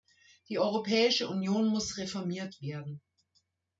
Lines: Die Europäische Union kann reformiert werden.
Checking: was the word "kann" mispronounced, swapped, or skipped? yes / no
yes